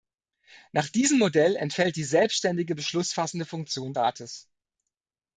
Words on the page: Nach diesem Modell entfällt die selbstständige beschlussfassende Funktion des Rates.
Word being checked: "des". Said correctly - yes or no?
no